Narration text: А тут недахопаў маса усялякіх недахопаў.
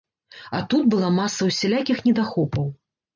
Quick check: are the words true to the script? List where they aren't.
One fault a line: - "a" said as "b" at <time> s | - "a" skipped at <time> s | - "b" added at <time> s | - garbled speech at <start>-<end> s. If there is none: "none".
- "недахопаў" said as "была" at 0.9 s